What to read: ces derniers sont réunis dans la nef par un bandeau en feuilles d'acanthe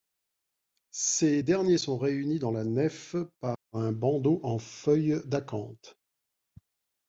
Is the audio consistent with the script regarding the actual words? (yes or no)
yes